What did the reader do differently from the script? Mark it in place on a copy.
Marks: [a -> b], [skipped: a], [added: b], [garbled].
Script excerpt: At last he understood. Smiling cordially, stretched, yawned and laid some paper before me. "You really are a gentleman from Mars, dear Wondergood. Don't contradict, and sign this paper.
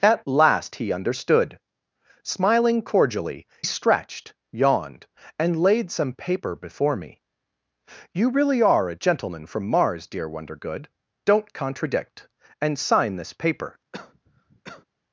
At last he understood. Smiling cordially, stretched, yawned and laid some paper before me. "You really are a gentleman from Mars, dear Wondergood. Don't contradict, and sign this paper.